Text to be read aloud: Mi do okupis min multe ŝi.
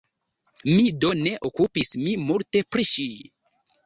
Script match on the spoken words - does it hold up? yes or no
no